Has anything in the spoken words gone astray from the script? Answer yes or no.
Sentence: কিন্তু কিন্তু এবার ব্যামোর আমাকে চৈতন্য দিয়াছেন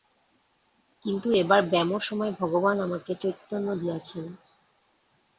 yes